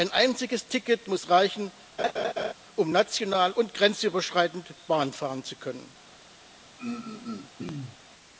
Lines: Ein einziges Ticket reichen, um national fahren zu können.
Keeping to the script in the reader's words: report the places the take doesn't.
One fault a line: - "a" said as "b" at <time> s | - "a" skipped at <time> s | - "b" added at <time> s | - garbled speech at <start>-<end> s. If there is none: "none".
- "muss" added at 1.1 s
- "und grenzüberschreitend Bahn" added at 3.5 s